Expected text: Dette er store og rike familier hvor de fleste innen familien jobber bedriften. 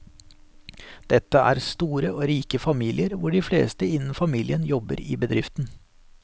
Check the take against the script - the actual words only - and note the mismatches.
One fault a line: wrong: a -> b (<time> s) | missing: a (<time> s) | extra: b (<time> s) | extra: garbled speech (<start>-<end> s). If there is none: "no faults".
extra: i (5.0 s)